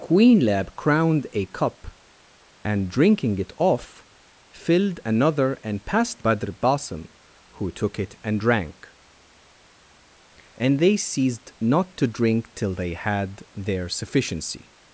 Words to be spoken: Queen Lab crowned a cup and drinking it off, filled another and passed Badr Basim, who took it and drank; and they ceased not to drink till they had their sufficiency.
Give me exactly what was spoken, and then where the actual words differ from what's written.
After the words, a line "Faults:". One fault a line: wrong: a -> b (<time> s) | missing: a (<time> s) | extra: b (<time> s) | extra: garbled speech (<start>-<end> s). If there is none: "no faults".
Queen Lab crowned a cup and drinking it off, filled another and passed Badr Basim, who took it and drank; and they ceased not to drink till they had their sufficiency.
Faults:
no faults